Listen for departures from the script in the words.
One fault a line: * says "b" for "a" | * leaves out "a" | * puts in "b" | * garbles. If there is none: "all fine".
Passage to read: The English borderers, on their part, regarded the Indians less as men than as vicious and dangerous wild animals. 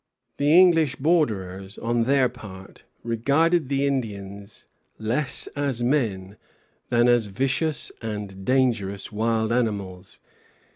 all fine